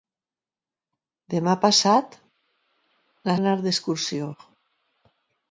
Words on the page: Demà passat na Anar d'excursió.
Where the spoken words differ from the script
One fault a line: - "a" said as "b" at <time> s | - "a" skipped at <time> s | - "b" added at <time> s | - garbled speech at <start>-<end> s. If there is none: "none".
none